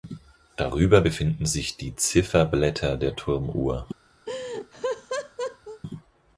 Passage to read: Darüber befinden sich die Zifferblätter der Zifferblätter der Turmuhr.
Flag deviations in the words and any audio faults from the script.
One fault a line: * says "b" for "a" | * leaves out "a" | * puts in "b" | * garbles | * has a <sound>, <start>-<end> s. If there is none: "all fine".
* leaves out "Zifferblätter der"
* has a laugh, 4.3-5.8 s